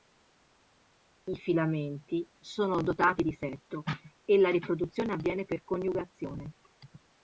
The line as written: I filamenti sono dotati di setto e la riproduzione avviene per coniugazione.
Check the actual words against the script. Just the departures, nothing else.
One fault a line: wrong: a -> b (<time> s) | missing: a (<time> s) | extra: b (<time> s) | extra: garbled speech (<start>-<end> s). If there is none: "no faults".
no faults